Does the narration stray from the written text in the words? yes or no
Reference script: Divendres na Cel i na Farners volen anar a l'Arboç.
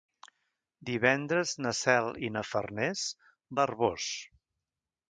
yes